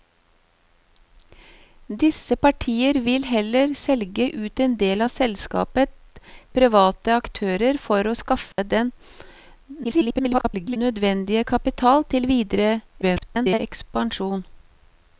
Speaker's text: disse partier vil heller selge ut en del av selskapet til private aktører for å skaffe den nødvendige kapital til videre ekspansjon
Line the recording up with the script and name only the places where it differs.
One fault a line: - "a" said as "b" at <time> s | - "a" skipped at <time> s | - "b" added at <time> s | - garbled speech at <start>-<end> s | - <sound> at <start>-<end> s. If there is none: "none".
- "til" skipped at 5.9 s
- dropout at 8.5-8.6 s
- garbled speech at 9.8-10.8 s
- garbled speech at 13.0-13.6 s